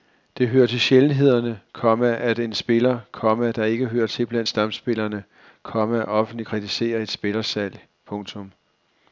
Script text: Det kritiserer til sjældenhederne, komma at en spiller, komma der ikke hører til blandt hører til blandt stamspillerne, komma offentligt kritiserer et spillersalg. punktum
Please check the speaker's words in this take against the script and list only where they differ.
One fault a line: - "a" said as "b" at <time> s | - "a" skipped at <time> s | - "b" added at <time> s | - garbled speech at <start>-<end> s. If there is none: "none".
- "kritiserer" said as "hører" at 0.5 s
- "hører til blandt" skipped at 4.5 s